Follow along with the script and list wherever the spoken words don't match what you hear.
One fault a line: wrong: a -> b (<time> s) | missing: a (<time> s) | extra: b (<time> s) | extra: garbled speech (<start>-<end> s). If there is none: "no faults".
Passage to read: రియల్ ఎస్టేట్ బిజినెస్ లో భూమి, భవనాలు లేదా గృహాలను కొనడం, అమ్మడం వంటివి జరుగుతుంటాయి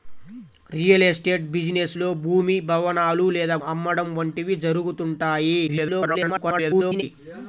missing: గృహాలను కొనడం (3.6 s)
extra: garbled speech (5.7-7.0 s)